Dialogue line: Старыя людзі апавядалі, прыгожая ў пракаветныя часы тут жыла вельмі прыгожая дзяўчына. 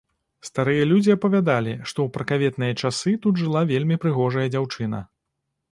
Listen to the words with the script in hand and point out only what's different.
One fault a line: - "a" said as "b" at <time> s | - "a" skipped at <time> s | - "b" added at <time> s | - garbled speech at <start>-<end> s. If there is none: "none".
- "прыгожая" said as "што" at 1.9 s